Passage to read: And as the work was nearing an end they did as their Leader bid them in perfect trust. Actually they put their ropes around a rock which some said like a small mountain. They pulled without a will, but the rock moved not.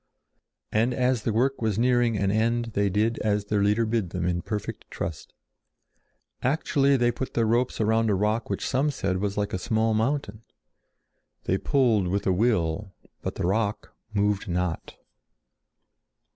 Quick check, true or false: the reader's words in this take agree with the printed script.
false